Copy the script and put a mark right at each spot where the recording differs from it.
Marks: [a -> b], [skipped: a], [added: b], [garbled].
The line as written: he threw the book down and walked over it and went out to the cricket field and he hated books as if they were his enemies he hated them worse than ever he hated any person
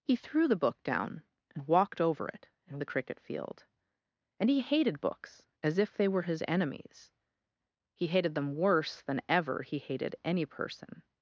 he threw the book down and walked over it and [skipped: went out to] the cricket field and he hated books as if they were his enemies he hated them worse than ever he hated any person